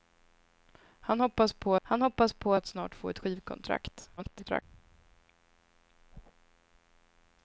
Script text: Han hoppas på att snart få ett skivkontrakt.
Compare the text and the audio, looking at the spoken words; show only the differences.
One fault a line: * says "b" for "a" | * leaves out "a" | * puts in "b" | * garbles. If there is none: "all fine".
* puts in "han hoppas på"
* garbles